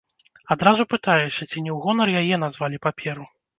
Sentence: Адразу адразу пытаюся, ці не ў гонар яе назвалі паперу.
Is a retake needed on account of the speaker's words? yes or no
yes